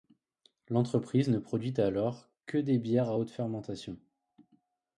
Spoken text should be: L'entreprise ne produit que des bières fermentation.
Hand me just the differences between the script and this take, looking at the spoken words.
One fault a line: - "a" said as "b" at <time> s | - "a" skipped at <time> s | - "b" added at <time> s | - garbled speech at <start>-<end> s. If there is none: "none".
- "alors" added at 1.8 s
- "à haute" added at 3.1 s